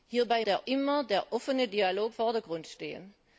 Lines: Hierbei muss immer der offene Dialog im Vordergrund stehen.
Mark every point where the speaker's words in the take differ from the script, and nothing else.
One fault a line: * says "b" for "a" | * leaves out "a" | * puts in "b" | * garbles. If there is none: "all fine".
* says "der" for "muss"
* leaves out "im"